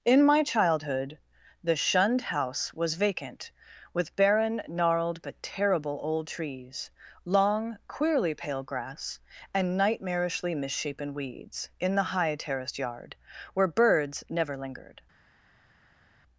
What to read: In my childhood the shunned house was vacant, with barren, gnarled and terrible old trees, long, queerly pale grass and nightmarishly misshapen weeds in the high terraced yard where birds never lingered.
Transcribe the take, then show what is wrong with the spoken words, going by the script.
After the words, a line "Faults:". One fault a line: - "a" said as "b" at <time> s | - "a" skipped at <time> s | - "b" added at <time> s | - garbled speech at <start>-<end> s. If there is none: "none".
In my childhood the shunned house was vacant, with barren, gnarled but terrible old trees, long, queerly pale grass and nightmarishly misshapen weeds in the high terraced yard where birds never lingered.
Faults:
- "and" said as "but" at 5.2 s